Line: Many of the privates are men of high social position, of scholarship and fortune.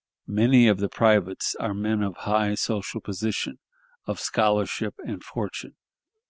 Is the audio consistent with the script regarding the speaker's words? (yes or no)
yes